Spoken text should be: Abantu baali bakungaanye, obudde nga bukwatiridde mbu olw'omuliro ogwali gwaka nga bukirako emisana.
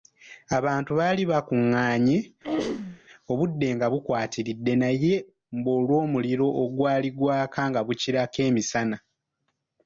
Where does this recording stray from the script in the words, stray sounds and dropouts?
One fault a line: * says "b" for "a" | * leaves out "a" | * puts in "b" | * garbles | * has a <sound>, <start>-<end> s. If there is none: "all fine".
* has a throat clearing, 2.4-3.0 s
* puts in "naye"